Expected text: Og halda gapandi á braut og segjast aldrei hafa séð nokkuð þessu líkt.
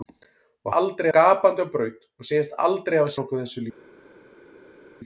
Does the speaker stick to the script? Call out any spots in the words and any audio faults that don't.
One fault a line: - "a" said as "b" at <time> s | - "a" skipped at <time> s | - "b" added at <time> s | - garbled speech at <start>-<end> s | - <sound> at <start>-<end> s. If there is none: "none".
- "halda" said as "aldrei" at 0.8 s
- "séð" skipped at 3.1 s